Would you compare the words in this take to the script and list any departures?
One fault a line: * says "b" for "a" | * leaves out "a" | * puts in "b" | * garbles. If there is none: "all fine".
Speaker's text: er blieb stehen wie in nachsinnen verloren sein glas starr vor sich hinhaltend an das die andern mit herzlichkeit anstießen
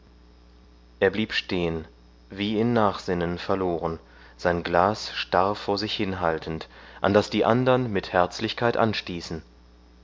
all fine